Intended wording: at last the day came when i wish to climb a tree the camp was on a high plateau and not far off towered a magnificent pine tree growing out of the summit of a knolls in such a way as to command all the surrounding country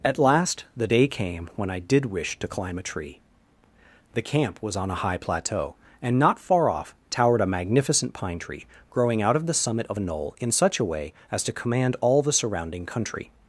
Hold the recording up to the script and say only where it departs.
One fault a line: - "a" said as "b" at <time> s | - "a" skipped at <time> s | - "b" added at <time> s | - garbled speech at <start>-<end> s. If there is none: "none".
- "did" added at 1.8 s
- "knolls" said as "knoll" at 10.0 s